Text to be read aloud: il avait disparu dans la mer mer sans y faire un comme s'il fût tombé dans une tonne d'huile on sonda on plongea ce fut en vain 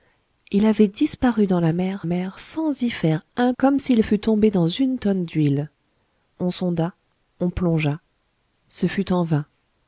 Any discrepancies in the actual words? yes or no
no